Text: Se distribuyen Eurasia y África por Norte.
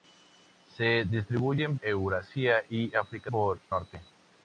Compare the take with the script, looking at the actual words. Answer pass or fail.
pass